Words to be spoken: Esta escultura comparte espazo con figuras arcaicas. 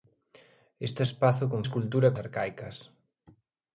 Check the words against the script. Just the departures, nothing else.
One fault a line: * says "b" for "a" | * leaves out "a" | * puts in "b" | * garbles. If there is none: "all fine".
* leaves out "escultura comparte"
* says "escultura" for "figuras"